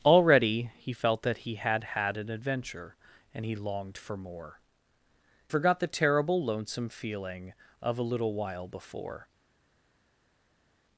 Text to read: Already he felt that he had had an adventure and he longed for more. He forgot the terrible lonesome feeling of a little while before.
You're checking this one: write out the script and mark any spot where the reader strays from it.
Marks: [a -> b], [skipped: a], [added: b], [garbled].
Already he felt that he had had an adventure and he longed for more. [skipped: He] forgot the terrible lonesome feeling of a little while before.